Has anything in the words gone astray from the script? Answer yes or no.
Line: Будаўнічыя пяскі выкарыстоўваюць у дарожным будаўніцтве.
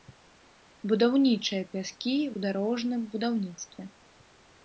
yes